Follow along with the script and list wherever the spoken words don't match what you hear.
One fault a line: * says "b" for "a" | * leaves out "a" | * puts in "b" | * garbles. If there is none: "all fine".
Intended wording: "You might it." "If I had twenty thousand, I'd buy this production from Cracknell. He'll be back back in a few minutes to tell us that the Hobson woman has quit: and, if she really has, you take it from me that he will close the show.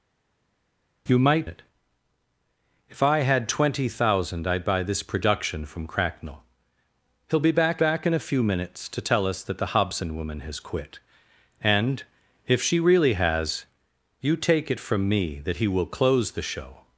all fine